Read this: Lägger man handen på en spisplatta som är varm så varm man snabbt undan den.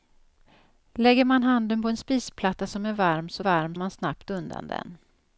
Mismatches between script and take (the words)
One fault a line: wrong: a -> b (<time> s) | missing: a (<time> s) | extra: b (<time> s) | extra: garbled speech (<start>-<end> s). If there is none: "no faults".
no faults